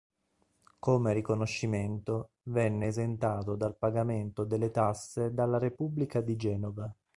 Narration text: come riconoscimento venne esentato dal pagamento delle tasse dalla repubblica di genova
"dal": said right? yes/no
yes